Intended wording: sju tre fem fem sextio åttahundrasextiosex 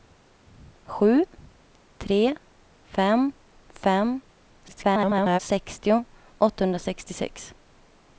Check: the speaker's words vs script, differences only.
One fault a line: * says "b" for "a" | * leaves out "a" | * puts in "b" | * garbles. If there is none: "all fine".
* garbles